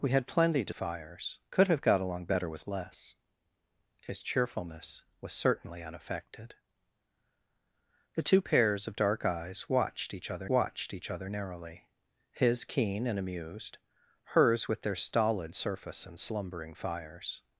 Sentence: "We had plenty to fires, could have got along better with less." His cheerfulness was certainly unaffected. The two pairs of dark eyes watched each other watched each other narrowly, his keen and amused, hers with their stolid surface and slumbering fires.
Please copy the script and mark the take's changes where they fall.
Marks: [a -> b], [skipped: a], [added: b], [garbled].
"We had plenty to fires, could have got along better with less." His cheerfulness was certainly unaffected. The two pairs of dark eyes watched each other watched each other narrowly, his keen and amused, hers with their stolid surface and slumbering fires.